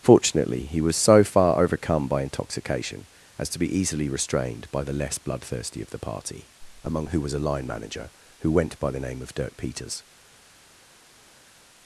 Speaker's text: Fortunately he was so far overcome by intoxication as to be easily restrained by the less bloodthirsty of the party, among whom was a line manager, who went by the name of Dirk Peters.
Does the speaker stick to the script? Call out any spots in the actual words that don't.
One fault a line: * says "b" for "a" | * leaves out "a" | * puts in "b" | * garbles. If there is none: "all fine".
* says "who" for "whom"